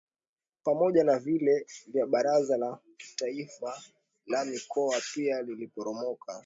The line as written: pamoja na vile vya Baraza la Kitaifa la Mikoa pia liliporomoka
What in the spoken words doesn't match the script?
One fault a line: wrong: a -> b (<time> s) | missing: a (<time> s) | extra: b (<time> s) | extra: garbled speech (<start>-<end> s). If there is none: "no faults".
no faults